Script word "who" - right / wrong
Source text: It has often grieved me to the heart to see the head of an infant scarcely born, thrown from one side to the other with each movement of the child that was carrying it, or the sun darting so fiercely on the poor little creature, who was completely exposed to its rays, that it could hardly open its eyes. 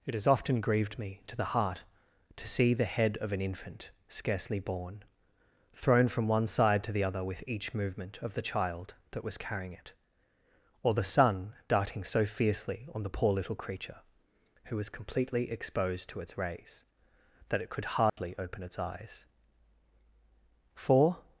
right